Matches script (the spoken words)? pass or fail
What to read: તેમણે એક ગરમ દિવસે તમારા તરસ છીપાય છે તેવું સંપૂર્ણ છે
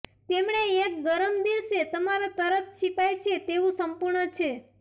pass